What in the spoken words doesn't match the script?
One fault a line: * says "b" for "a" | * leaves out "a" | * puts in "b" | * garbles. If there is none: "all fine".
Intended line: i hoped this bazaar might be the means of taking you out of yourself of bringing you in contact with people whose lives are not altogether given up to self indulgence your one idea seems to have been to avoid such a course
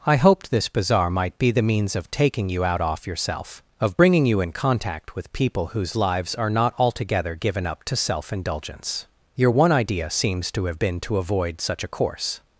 * says "off" for "of"